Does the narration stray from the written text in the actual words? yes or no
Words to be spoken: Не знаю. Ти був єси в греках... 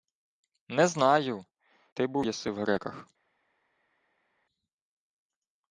no